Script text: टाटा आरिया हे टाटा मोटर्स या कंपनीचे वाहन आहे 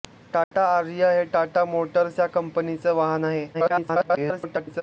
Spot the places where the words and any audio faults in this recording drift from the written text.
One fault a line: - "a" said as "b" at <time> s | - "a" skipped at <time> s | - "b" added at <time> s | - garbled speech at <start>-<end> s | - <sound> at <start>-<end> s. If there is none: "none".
- dropout at 0.4-0.5 s
- garbled speech at 3.5-4.8 s